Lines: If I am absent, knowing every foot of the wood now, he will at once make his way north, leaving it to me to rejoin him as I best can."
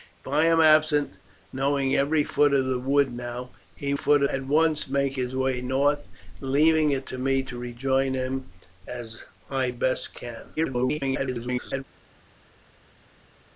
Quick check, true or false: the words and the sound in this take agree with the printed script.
false